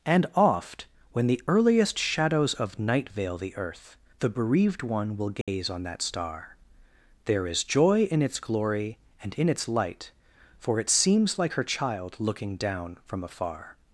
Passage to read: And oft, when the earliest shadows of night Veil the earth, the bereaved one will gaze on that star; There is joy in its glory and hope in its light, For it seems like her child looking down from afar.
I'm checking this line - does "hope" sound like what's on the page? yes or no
no